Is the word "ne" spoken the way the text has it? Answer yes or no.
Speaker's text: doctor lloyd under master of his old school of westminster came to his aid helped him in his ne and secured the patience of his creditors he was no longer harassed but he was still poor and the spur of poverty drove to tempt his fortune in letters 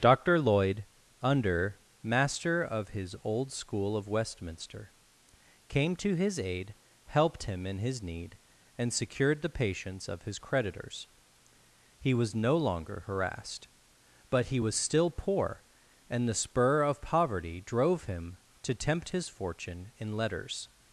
no